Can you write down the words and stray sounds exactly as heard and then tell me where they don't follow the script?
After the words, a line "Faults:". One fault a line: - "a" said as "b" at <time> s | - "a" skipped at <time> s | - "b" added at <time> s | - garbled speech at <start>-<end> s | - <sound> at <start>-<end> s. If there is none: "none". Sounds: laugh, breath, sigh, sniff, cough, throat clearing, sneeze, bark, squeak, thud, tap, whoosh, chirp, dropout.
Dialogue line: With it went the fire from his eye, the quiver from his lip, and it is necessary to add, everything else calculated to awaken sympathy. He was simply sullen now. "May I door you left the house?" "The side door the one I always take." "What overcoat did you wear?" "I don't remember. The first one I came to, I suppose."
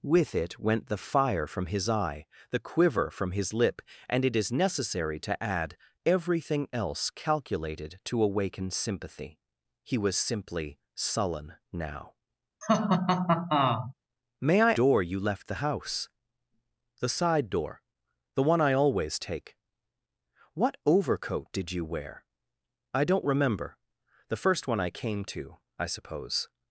With it went the fire from his eye, the quiver from his lip, and it is necessary to add, everything else calculated to awaken sympathy. He was simply sullen now. "May I door you left the house?" "The side door the one I always take." "What overcoat did you wear?" "I don't remember. The first one I came to, I suppose."
Faults:
- laugh at 12.6-13.9 s